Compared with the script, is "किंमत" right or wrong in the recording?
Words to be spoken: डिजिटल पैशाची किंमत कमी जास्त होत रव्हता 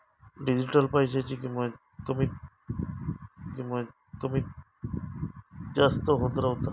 right